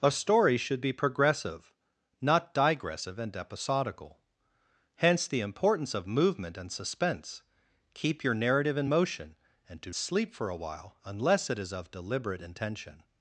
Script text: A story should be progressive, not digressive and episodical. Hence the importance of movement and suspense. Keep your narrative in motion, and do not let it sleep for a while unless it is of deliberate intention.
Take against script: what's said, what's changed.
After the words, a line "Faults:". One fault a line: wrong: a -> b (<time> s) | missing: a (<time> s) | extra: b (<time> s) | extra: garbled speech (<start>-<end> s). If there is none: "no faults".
A story should be progressive, not digressive and episodical. Hence the importance of movement and suspense. Keep your narrative in motion, and do sleep for a while unless it is of deliberate intention.
Faults:
missing: not let it (9.9 s)